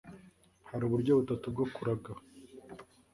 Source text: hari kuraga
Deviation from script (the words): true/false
true